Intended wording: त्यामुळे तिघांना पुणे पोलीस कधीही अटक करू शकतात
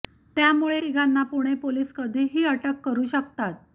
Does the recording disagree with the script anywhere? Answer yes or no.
no